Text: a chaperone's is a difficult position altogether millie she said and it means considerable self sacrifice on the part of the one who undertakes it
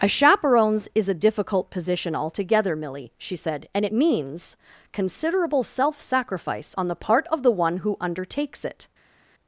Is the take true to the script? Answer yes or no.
yes